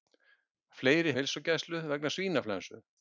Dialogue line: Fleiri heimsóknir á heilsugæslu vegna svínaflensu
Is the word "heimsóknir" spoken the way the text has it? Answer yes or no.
no